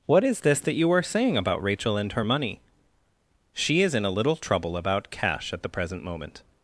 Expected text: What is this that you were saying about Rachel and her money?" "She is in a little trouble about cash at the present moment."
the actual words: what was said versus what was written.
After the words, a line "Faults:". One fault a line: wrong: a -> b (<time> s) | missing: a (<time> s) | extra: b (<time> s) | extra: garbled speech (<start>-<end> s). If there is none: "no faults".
What is this that you are saying about Rachel and her money?" "She is in a little trouble about cash at the present moment."
Faults:
wrong: were -> are (0.9 s)